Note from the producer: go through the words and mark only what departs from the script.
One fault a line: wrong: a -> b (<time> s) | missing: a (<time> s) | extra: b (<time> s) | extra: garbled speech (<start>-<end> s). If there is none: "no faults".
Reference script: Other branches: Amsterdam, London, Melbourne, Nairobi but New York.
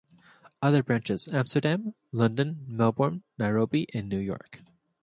wrong: but -> and (3.9 s)